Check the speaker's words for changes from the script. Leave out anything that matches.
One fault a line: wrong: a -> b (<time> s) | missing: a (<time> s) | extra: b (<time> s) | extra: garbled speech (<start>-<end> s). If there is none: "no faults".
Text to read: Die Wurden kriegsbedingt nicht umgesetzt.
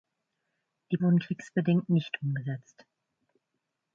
no faults